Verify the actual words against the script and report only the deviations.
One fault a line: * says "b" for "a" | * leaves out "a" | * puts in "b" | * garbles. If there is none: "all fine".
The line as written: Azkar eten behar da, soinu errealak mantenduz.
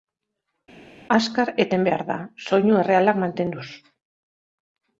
all fine